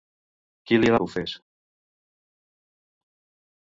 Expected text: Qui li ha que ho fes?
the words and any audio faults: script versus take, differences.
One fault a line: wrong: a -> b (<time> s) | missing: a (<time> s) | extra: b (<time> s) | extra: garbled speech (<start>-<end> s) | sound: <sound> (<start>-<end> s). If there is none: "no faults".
no faults